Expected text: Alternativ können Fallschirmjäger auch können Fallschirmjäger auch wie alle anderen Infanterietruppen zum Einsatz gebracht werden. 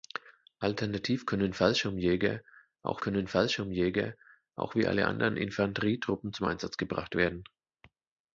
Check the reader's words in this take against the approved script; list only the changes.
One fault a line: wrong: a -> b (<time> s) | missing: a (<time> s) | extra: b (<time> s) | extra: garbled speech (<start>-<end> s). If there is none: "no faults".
no faults